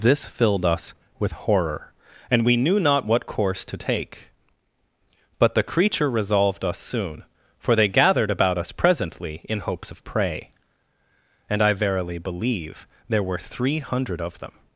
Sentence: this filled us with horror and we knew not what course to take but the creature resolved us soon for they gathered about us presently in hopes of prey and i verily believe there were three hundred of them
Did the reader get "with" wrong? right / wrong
right